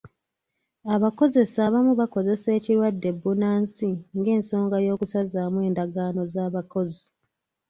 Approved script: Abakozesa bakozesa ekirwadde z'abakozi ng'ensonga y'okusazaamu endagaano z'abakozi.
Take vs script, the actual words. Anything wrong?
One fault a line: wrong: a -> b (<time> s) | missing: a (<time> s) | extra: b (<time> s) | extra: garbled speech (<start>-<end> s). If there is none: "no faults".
extra: abamu (1.7 s)
wrong: z'abakozi -> bbunansi (3.1 s)